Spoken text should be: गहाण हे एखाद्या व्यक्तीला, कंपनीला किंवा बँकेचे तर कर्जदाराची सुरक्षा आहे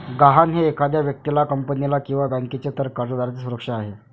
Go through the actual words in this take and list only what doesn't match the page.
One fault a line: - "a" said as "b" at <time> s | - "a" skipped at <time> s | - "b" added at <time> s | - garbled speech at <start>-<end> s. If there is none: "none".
none